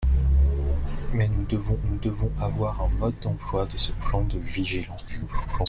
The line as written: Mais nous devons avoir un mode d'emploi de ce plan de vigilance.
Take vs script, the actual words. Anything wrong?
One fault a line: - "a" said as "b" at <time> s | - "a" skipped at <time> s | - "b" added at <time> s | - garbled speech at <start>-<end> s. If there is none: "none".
- "nous devons" added at 1.8 s
- garbled speech at 5.1-5.7 s